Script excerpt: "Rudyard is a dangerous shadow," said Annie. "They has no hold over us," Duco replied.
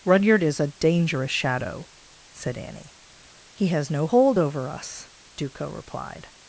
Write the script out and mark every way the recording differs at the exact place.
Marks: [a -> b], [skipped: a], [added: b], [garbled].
"Rudyard is a dangerous shadow," said Annie. ["They -> He] has no hold over us," Duco replied.